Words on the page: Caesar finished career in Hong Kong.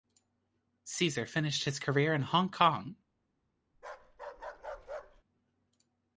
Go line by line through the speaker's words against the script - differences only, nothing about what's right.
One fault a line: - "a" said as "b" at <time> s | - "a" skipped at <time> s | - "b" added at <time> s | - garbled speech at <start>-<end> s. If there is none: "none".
- "his" added at 1.6 s